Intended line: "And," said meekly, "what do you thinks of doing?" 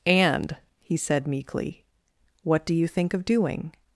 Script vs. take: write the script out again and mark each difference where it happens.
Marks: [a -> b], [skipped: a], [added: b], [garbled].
"And," [added: he] said meekly, "what do you [thinks -> think] of doing?"